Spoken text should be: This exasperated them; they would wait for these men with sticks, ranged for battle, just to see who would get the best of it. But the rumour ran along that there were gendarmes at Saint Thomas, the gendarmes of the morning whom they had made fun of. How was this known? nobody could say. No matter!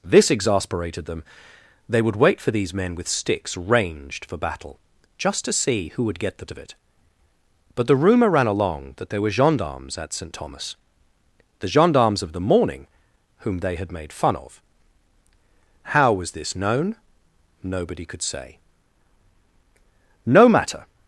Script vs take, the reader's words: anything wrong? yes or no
yes